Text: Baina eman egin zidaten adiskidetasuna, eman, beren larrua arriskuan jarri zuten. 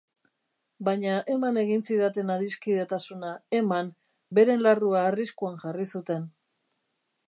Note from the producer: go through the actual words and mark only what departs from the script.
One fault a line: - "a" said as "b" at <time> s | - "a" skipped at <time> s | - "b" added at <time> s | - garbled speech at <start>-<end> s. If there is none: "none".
none